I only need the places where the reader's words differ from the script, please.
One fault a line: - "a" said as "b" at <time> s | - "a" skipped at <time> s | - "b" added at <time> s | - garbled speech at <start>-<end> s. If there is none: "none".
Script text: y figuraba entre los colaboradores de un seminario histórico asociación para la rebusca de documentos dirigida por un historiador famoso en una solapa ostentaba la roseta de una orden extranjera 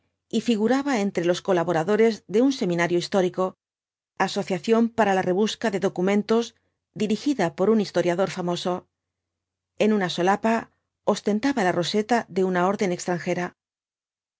none